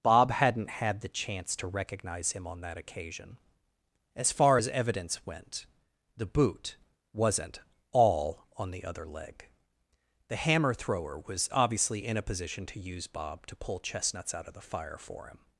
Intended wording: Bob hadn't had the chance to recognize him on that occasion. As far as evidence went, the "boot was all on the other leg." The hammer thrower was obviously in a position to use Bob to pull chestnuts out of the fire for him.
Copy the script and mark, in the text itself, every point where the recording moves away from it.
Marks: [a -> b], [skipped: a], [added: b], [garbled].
Bob hadn't had the chance to recognize him on that occasion. As far as evidence went, the "boot [was -> wasn't] all on the other leg." The hammer thrower was obviously in a position to use Bob to pull chestnuts out of the fire for him.